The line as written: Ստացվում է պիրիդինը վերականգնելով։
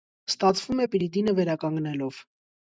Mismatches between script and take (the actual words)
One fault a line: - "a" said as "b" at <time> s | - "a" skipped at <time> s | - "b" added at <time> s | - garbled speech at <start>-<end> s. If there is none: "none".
none